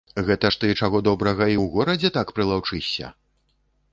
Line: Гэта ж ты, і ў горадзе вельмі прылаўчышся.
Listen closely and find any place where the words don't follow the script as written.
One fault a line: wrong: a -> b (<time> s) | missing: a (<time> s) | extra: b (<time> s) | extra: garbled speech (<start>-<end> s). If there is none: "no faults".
extra: чаго добрага (0.8 s)
wrong: вельмі -> так (2.2 s)